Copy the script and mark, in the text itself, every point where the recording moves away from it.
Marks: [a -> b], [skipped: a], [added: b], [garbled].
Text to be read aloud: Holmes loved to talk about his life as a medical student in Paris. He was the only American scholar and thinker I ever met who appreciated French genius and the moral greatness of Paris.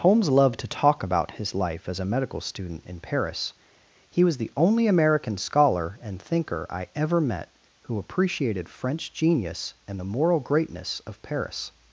Holmes loved to talk about his life as a medical student in Paris. He was the only American scholar and thinker I ever met who appreciated French genius and the moral greatness of Paris.